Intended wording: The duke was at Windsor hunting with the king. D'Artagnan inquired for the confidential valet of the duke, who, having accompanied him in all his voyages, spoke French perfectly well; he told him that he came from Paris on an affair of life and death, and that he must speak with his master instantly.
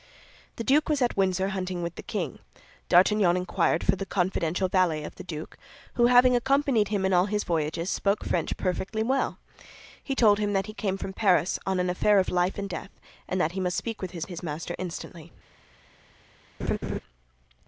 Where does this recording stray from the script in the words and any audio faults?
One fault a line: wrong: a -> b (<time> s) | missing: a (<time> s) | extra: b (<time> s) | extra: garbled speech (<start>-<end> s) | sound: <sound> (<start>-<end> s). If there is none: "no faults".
extra: his (14.2 s)
sound: laugh (16.6-17.0 s)